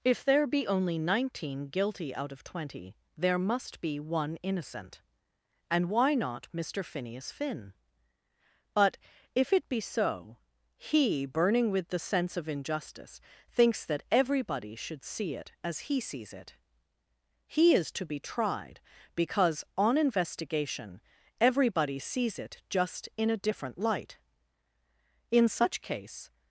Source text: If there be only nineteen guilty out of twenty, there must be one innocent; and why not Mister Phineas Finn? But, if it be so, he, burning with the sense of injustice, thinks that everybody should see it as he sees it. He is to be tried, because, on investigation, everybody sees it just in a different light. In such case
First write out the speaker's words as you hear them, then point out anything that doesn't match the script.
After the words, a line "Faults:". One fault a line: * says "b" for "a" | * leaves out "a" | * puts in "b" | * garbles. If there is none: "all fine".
If there be only nineteen guilty out of twenty, there must be one innocent; and why not Mister Phineas Finn? But, if it be so, he, burning with the sense of injustice, thinks that everybody should see it as he sees it. He is to be tried, because, on investigation, everybody sees it just in a different light. In such case
Faults:
all fine